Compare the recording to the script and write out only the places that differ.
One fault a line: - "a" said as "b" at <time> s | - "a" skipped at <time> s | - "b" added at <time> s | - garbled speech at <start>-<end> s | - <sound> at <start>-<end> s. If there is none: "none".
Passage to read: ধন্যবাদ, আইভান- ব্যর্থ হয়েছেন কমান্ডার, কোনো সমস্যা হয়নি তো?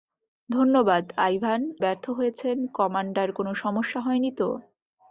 none